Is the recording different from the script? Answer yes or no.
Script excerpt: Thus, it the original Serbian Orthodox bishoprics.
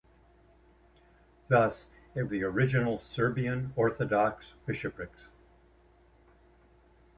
no